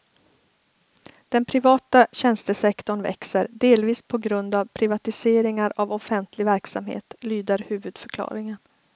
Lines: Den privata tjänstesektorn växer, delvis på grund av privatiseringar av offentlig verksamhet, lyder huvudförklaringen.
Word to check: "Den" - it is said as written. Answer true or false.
true